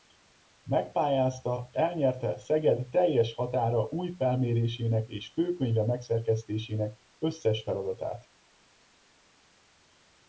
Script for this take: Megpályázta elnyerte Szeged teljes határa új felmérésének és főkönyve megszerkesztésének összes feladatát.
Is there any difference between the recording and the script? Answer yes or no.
no